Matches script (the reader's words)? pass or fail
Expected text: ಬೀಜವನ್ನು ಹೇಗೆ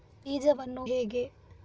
pass